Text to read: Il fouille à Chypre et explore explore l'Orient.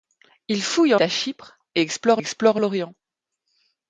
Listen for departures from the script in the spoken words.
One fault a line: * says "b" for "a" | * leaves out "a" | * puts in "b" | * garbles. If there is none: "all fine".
all fine